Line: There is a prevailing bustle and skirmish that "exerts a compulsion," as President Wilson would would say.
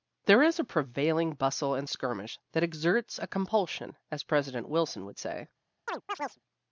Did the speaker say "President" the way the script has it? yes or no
yes